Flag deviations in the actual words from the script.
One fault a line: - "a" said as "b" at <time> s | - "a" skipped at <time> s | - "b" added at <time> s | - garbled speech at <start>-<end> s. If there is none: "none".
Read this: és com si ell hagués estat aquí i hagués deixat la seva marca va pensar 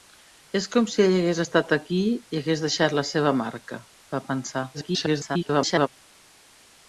- garbled speech at 4.7-5.9 s